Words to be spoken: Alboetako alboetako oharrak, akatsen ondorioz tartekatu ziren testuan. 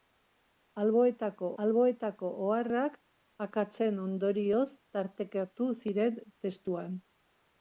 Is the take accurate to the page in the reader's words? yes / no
yes